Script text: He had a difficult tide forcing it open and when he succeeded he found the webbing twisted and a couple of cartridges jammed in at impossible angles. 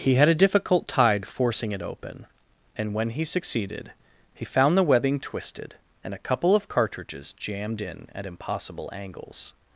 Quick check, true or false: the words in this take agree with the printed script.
true